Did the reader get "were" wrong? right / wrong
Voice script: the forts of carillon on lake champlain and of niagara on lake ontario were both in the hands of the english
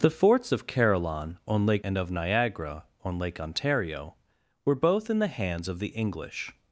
right